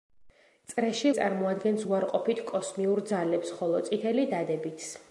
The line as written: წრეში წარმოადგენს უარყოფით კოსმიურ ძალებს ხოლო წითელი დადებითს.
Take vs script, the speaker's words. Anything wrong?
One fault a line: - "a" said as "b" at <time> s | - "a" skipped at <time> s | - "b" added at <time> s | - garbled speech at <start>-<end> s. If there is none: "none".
none